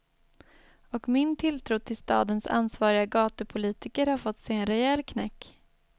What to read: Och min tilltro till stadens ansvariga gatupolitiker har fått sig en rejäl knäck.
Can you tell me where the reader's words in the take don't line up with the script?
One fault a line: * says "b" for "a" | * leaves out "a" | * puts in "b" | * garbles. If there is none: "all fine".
all fine